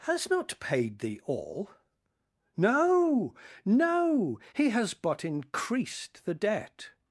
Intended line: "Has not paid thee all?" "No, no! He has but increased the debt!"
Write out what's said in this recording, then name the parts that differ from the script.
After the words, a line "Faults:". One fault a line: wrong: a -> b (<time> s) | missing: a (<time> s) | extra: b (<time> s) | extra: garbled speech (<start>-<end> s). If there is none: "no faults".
"Has not paid thee all?" "No, no! He has but increased the debt!"
Faults:
no faults